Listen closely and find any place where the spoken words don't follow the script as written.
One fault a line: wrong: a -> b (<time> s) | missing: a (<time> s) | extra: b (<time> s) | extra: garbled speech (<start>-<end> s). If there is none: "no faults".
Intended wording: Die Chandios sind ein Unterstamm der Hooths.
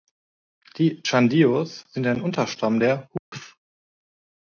no faults